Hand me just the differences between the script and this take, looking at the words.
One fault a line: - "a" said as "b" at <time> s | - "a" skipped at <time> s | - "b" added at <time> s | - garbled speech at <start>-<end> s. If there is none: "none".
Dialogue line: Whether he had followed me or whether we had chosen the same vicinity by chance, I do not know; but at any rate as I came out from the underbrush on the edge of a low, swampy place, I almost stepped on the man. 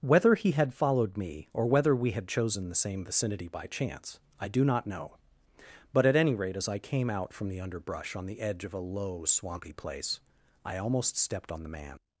none